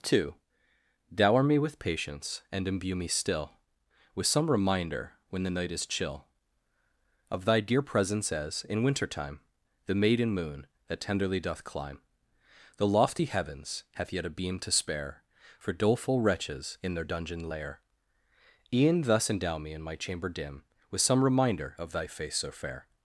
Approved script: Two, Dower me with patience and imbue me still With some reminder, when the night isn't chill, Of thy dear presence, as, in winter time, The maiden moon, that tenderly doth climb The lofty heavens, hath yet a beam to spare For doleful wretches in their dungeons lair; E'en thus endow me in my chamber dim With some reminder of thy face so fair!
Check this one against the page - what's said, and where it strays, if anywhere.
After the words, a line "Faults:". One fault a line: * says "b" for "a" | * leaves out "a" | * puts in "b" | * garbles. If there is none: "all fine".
Two, Dower me with patience and imbue me still With some reminder, when the night is chill, Of thy dear presence, as, in winter time, The maiden moon, that tenderly doth climb The lofty heavens, hath yet a beam to spare For doleful wretches in their dungeon lair; E'en thus endow me in my chamber dim With some reminder of thy face so fair!
Faults:
* says "is" for "isn't"
* says "dungeon" for "dungeons"